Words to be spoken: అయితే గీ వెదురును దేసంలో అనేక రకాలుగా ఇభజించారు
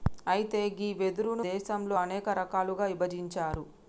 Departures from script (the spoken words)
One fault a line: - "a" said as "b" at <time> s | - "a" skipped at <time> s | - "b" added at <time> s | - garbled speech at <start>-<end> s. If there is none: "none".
none